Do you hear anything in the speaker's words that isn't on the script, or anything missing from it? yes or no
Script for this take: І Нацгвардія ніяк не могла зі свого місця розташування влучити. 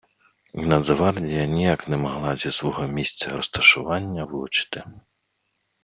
no